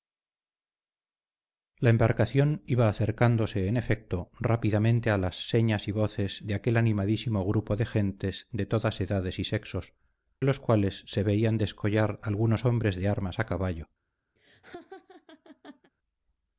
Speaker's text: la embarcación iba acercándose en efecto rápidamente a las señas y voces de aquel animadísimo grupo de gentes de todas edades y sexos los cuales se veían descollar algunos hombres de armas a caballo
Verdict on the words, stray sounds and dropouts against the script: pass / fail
fail